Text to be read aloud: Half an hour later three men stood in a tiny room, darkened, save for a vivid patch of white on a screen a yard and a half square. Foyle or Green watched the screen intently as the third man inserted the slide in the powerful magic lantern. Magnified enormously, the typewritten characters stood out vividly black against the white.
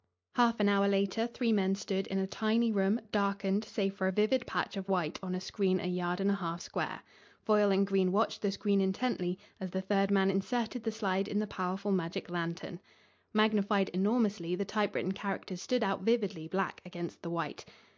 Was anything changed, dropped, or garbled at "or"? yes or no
yes